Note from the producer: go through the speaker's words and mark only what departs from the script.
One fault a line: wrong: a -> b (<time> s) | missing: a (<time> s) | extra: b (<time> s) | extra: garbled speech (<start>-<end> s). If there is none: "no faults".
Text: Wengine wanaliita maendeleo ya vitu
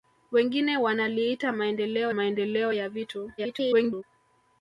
extra: maendeleo (2.1 s)
extra: garbled speech (3.4-4.0 s)